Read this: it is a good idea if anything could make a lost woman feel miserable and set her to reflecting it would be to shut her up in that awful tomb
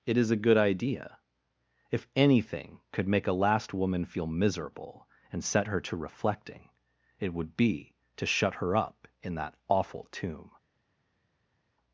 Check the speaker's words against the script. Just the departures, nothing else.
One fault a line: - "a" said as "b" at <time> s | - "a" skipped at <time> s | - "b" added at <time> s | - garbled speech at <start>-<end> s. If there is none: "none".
- "lost" said as "last" at 3.3 s